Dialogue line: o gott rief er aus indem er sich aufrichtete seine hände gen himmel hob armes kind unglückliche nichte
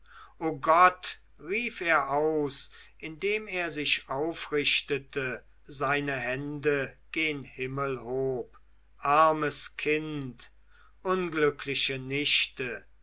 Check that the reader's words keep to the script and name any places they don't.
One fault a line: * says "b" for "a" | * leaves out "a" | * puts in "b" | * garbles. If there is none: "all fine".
all fine